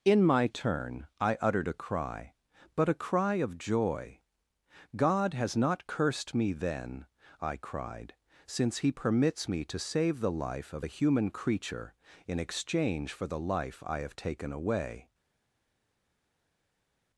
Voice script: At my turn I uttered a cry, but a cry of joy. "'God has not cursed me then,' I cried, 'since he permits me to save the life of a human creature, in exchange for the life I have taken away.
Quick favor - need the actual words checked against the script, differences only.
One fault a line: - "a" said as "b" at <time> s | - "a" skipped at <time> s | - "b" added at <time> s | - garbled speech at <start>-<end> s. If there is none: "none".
- "At" said as "In" at 0.0 s